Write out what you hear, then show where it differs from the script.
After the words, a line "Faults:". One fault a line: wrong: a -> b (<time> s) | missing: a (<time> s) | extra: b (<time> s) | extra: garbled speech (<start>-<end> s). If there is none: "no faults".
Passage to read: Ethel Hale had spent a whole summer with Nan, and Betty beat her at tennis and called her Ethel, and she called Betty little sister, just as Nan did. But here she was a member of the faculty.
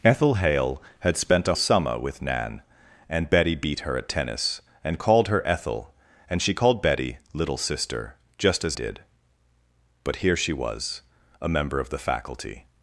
Ethel Hale had spent a summer with Nan, and Betty beat her at tennis and called her Ethel, and she called Betty little sister, just as Did. But here she was a member of the faculty.
Faults:
missing: whole (1.6 s)
missing: Nan (8.8 s)